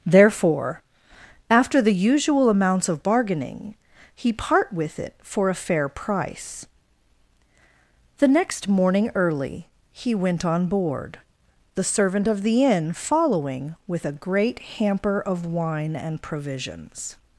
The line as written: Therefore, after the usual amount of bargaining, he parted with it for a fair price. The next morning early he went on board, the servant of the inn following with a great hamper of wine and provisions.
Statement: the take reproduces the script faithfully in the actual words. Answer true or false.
false